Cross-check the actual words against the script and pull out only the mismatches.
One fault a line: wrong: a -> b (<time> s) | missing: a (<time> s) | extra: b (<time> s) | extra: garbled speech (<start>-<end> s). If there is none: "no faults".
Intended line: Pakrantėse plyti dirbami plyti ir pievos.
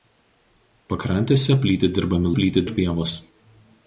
no faults